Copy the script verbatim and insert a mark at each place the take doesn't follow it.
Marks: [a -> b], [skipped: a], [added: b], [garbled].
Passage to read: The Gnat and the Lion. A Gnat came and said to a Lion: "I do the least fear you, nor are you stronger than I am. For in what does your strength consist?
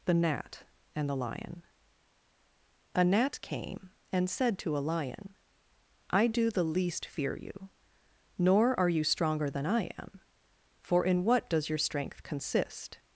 The Gnat and the Lion. A Gnat came and said to a Lion: "I do the least fear you, nor are you stronger than I am. For in what does your strength consist?